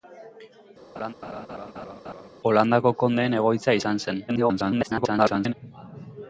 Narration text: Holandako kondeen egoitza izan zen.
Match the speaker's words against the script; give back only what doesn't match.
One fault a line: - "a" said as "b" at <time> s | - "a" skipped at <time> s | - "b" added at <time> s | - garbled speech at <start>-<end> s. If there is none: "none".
- garbled speech at 4.3-5.5 s